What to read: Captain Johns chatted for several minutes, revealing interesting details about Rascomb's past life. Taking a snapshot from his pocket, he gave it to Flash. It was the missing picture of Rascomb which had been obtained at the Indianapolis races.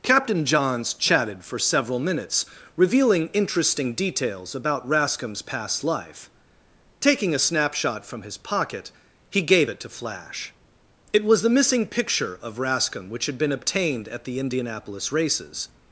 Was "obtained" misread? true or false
false